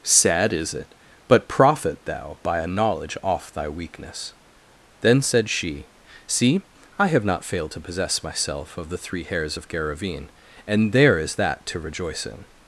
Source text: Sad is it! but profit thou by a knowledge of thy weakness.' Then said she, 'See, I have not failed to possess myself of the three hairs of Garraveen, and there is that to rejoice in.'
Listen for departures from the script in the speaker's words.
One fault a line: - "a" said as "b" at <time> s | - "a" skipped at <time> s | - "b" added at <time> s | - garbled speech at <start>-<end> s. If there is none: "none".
- "of" said as "off" at 3.2 s